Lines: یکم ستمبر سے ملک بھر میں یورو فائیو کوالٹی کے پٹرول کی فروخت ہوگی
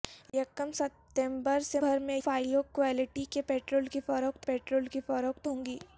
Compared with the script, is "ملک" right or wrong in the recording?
wrong